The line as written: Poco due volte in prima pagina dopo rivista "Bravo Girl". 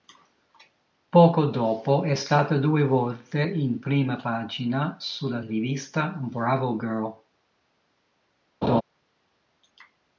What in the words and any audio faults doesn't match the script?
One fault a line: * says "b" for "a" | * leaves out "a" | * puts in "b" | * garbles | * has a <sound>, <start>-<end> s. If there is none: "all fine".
* puts in "dopo è stata"
* says "sulla" for "dopo"
* has a laugh, 8.6-8.8 s